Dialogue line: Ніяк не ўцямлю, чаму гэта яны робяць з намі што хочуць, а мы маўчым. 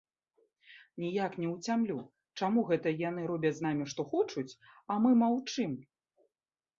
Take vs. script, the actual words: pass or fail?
pass